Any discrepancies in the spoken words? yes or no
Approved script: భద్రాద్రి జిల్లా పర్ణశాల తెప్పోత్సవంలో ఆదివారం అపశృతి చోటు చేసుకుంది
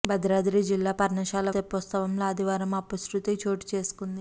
no